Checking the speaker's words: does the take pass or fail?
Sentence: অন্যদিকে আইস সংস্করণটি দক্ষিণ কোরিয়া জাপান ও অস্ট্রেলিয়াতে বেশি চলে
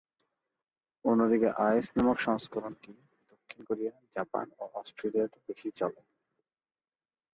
fail